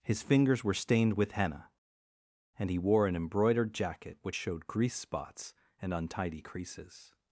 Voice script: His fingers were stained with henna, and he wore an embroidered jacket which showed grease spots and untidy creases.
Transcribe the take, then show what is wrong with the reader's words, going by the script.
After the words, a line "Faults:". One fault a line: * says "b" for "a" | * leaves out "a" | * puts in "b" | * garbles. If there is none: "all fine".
His fingers were stained with henna, and he wore an embroidered jacket which showed grease spots and untidy creases.
Faults:
all fine